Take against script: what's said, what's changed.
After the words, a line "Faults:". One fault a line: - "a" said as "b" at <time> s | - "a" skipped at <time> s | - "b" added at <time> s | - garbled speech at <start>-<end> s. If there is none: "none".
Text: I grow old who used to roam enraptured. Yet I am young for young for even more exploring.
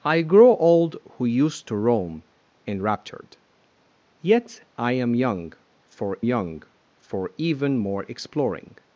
I grow old who used to roam enraptured. Yet I am young for young for even more exploring.
Faults:
none